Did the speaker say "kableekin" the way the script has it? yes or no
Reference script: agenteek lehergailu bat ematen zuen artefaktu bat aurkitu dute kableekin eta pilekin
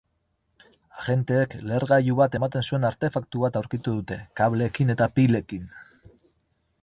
yes